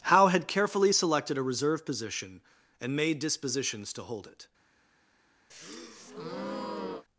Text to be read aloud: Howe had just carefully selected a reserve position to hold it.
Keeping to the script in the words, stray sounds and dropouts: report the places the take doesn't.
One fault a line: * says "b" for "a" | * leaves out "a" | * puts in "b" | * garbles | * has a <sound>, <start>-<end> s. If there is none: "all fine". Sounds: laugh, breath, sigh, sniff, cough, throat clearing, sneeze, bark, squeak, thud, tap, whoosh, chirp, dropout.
* leaves out "just"
* puts in "and made dispositions"
* has a breath, 5.5-7.1 s